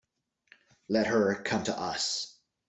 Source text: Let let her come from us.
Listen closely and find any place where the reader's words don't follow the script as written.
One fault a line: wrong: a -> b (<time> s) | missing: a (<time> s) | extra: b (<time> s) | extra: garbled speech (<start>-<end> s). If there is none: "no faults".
missing: let (1.1 s)
wrong: from -> to (1.6 s)